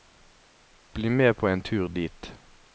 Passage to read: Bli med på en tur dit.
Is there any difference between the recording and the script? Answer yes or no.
no